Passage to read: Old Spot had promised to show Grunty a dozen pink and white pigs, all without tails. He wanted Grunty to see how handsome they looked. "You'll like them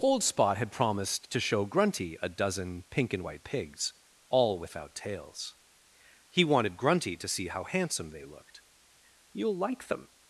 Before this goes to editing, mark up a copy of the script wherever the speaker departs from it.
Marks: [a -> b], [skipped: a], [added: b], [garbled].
Old Spot had promised to show Grunty a dozen pink and white pigs, all without tails. He wanted Grunty to see how handsome they looked. "You'll like them